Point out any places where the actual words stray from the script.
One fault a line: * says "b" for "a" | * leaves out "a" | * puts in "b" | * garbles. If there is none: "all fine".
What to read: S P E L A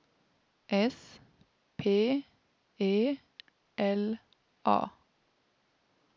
all fine